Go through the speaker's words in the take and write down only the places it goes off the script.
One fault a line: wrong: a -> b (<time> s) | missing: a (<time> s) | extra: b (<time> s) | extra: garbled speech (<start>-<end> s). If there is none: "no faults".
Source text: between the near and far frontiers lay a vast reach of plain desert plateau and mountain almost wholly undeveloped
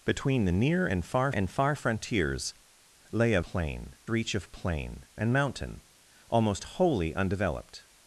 extra: and far (1.3 s)
wrong: vast -> plain (3.4 s)
missing: desert plateau (5.1 s)